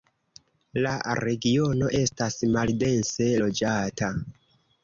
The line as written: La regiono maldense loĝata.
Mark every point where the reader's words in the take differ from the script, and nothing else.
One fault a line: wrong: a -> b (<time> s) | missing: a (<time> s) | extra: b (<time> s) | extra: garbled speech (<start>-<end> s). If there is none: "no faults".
extra: estas (2.0 s)